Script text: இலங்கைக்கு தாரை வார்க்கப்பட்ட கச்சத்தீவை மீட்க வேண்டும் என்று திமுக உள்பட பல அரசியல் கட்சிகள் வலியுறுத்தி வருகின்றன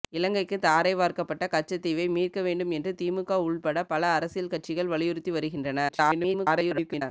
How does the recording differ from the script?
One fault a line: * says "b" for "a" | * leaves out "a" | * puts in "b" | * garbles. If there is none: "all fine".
* garbles